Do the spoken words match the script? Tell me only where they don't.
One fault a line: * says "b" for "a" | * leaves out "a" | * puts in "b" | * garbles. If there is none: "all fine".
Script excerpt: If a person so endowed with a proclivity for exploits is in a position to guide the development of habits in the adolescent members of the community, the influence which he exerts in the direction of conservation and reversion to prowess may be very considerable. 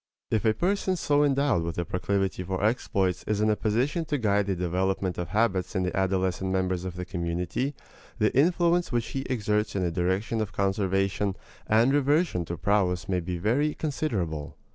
all fine